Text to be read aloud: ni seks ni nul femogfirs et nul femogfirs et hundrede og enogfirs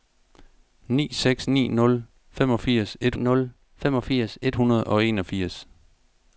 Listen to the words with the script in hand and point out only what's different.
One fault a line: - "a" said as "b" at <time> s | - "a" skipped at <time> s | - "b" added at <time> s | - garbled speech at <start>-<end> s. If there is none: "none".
none